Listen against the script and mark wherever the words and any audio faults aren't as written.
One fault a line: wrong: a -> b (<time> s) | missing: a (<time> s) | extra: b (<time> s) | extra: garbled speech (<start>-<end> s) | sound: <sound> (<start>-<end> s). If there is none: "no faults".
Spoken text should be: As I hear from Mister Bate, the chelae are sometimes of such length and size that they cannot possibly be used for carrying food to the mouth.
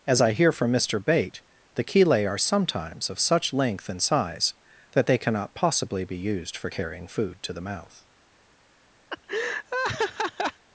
sound: laugh (9.1-10.6 s)